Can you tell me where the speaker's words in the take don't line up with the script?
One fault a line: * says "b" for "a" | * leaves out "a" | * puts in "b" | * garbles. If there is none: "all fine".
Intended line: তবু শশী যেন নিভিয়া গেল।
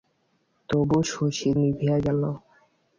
* leaves out "যেন"